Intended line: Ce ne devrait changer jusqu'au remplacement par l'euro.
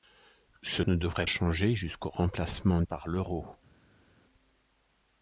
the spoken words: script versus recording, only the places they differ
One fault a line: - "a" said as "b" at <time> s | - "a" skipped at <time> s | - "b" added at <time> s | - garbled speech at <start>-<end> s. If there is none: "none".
none